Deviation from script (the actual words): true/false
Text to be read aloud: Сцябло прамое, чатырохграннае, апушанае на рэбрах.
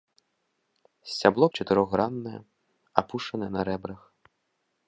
true